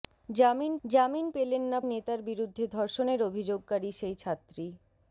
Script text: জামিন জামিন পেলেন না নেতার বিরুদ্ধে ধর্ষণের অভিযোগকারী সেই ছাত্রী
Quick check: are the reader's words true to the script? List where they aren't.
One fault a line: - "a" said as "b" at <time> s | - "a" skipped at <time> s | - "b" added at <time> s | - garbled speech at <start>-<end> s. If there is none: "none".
none